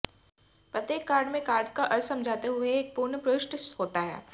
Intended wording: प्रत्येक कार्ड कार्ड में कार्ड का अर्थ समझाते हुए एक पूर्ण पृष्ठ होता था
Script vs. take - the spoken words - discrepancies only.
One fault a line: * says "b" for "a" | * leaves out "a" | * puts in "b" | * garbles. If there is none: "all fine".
* leaves out "कार्ड"
* says "है" for "था"